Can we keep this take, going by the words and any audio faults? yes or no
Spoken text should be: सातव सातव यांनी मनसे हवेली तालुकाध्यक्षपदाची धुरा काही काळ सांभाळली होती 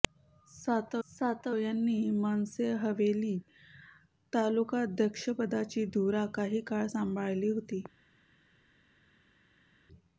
yes